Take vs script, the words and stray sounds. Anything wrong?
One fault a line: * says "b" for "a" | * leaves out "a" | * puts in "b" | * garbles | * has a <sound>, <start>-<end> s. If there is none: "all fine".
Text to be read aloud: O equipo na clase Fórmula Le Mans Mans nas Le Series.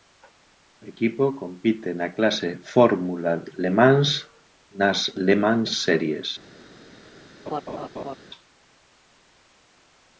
* puts in "compite"
* leaves out "Mans"
* puts in "Mans"
* has a laugh, 7.5-8.2 s